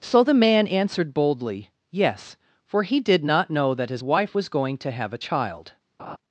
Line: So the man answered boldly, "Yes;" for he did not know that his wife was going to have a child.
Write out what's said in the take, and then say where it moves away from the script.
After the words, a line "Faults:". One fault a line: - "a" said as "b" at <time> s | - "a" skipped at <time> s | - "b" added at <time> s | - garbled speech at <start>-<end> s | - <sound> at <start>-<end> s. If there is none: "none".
So the man answered boldly, "Yes;" for he did not know that his wife was going to have a child.
Faults:
- laugh at 6.0-6.2 s